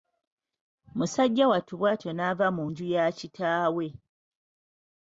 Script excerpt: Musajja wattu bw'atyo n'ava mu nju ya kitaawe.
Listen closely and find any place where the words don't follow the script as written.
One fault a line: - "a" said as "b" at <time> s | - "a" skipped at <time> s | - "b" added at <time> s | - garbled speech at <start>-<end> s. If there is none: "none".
none